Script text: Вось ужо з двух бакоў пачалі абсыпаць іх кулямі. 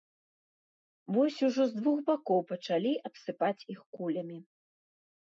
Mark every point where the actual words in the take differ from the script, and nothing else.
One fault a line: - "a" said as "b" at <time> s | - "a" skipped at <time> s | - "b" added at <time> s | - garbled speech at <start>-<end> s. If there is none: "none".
none